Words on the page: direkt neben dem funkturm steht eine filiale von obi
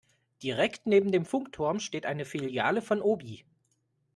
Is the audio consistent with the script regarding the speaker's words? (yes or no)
yes